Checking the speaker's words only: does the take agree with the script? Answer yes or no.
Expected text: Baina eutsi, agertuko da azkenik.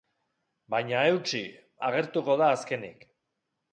yes